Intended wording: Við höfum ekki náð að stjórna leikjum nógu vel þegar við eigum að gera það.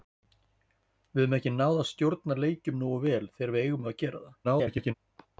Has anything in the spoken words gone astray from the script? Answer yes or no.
yes